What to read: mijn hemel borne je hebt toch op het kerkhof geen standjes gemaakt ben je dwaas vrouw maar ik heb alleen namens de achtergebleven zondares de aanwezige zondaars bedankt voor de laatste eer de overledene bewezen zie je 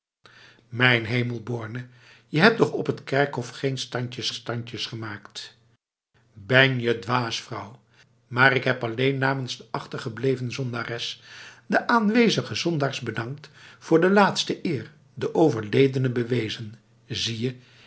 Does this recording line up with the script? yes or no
no